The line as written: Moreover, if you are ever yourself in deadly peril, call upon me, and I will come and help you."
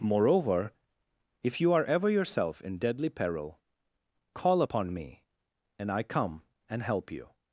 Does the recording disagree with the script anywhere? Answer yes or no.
yes